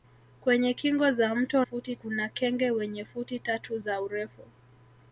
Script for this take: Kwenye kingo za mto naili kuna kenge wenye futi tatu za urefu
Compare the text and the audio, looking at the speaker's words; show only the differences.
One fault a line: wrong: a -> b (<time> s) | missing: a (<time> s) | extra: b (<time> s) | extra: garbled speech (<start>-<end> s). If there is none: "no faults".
wrong: naili -> futi (1.6 s)